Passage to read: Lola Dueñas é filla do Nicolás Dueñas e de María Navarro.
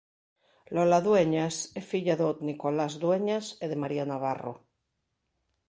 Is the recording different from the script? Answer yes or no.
no